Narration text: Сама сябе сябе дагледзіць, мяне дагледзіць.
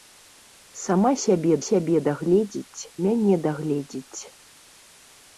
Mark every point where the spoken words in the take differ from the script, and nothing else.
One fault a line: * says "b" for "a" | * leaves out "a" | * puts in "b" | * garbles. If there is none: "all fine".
all fine